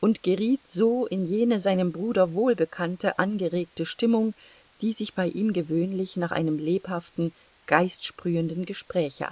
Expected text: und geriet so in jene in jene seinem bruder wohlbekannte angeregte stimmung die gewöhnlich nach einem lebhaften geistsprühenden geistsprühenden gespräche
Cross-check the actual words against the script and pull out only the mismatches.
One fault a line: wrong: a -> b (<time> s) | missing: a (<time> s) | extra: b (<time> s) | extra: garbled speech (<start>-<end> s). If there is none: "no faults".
missing: in jene (1.6 s)
extra: sich bei ihm (4.9 s)
missing: geistsprühenden (8.6 s)